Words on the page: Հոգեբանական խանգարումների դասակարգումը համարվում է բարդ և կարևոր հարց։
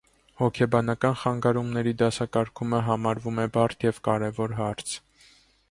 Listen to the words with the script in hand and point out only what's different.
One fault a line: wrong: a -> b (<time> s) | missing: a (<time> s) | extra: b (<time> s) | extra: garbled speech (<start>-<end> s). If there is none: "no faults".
no faults